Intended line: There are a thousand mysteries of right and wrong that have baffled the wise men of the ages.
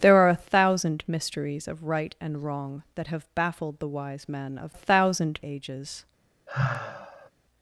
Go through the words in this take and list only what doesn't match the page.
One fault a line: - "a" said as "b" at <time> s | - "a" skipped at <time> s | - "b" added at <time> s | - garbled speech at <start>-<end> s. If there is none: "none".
- "the" said as "thousand" at 4.7 s